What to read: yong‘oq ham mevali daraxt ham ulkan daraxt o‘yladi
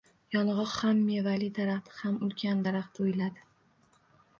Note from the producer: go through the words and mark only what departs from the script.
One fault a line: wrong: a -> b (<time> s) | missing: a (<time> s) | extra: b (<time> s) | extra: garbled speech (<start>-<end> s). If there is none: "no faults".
no faults